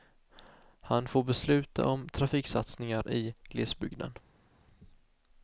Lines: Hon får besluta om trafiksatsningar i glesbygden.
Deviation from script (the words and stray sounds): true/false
true